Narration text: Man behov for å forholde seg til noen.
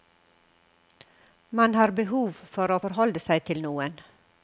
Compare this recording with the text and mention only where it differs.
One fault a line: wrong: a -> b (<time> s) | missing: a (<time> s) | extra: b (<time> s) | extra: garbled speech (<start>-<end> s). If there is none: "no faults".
extra: har (1.8 s)